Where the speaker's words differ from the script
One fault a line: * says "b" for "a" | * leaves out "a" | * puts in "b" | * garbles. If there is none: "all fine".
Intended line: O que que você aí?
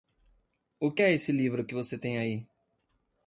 * puts in "é esse livro"
* puts in "tem"